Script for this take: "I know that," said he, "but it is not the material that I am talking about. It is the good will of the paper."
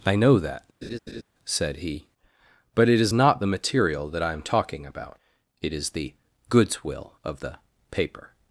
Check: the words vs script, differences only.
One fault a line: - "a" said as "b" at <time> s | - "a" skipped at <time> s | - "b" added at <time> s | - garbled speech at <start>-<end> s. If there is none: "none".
- "good" said as "goods" at 6.5 s